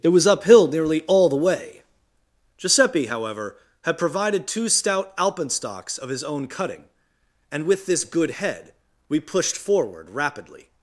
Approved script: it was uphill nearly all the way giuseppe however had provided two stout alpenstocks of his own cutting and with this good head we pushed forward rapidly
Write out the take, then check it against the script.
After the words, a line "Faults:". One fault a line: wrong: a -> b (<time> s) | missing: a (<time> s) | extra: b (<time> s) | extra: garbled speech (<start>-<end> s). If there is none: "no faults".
it was uphill nearly all the way giuseppe however had provided two stout alpenstocks of his own cutting and with this good head we pushed forward rapidly
Faults:
no faults